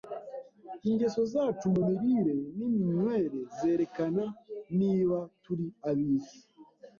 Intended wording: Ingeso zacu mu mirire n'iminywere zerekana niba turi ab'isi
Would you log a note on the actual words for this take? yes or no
no